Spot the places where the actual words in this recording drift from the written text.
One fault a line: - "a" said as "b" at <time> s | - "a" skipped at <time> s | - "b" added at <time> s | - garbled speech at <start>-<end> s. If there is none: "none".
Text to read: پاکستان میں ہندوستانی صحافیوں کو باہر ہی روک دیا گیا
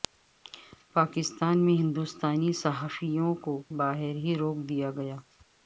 none